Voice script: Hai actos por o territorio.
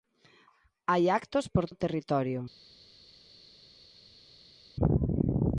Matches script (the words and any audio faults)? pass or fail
pass